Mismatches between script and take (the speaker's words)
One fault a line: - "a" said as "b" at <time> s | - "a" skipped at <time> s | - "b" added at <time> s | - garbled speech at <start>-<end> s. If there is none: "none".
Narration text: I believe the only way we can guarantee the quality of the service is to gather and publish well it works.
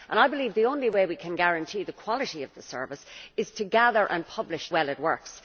none